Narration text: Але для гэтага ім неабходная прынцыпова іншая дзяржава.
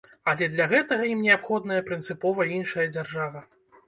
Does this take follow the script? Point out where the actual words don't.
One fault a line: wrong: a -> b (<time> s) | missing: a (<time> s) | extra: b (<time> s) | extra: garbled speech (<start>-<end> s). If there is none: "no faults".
no faults